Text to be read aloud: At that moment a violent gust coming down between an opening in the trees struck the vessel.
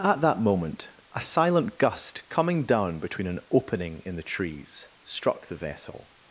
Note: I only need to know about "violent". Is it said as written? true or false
false